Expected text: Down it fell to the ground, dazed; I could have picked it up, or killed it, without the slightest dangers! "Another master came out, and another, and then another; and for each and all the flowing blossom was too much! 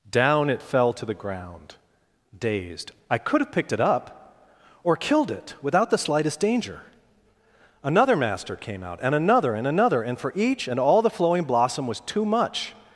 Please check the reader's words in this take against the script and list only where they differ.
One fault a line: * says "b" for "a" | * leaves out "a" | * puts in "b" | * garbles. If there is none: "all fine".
* says "danger" for "dangers"
* leaves out "then"